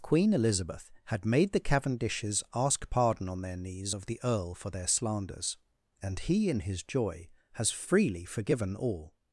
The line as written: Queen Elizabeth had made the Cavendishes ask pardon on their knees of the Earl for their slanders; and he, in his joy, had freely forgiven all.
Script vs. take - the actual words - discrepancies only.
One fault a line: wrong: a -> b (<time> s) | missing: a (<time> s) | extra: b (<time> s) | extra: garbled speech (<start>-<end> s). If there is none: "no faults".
wrong: had -> has (7.5 s)